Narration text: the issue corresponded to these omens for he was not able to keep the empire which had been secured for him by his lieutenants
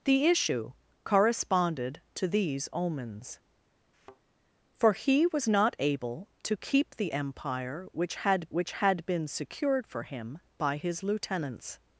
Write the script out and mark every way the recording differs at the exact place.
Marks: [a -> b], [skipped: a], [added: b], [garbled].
the issue corresponded to these omens for he was not able to keep the empire which had [added: which had] been secured for him by his lieutenants